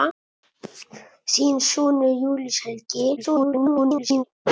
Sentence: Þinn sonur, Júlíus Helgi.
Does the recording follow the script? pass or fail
fail